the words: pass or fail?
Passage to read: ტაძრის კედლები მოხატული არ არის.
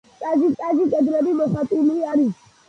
fail